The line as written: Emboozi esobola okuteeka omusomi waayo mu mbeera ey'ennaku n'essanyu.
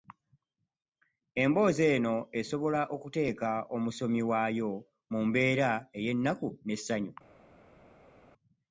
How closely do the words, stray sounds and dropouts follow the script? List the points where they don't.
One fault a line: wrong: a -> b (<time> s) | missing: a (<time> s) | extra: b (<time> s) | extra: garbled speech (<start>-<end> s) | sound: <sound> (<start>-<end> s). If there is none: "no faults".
extra: eno (1.9 s)